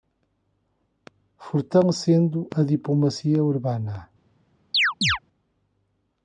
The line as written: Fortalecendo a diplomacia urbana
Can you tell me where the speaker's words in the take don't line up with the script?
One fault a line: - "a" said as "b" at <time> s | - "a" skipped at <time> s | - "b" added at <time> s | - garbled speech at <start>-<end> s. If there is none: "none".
none